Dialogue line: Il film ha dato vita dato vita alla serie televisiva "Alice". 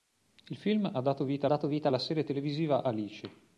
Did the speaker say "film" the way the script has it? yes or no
yes